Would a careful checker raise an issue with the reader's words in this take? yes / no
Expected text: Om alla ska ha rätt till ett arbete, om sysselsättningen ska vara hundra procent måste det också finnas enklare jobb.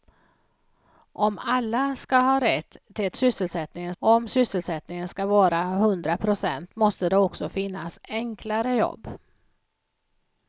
yes